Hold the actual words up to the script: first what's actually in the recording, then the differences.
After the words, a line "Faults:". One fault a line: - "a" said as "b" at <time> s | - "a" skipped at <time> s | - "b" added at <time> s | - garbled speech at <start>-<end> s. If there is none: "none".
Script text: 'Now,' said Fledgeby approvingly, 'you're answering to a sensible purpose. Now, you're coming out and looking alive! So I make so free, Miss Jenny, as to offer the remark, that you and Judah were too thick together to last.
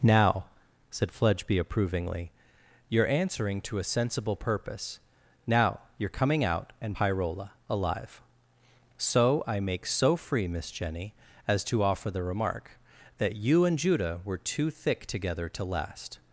'Now,' said Fledgeby approvingly, 'you're answering to a sensible purpose. Now, you're coming out and pyrola alive! So I make so free, Miss Jenny, as to offer the remark, that you and Judah were too thick together to last.
Faults:
- "looking" said as "pyrola" at 6.9 s